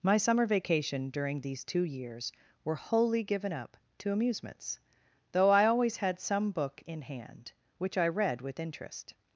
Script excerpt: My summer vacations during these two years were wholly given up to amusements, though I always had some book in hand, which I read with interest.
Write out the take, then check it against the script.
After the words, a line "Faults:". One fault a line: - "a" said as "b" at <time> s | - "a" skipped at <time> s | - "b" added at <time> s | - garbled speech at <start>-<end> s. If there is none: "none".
My summer vacation during these two years were wholly given up to amusements, though I always had some book in hand, which I read with interest.
Faults:
- "vacations" said as "vacation" at 0.5 s